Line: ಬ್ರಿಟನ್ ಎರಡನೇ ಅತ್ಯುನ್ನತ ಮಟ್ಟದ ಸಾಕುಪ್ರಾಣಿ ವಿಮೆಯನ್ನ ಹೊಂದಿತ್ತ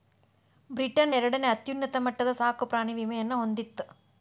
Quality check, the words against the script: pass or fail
pass